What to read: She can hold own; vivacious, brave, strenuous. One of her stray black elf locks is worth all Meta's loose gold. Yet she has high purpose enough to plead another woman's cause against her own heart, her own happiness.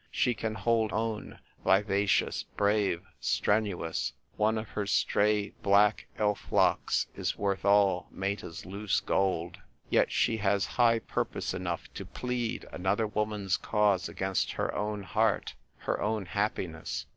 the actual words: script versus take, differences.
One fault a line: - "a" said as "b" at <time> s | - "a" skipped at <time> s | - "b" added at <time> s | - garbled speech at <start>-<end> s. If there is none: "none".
none